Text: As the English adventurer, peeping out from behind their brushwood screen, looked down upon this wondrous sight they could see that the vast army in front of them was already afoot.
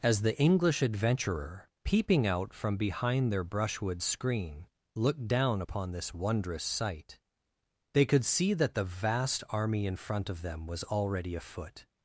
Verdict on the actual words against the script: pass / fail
pass